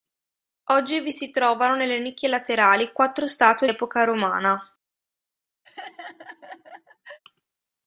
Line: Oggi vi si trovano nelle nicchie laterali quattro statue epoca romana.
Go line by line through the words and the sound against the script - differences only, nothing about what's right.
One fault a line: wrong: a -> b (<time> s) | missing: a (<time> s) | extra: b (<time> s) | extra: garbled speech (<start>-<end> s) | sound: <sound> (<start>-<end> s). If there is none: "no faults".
sound: laugh (5.6-7.2 s)